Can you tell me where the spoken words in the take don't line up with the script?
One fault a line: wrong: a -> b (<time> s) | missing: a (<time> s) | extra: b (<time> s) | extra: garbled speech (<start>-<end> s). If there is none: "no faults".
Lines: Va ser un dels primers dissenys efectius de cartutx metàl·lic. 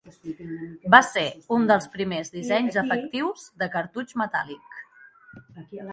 no faults